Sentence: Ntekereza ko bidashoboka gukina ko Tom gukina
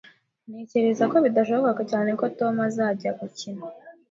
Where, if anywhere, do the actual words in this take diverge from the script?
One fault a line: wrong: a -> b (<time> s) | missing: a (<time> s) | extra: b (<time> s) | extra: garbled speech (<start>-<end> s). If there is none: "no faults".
wrong: gukina -> cyane (1.9 s)
extra: azajya (2.7 s)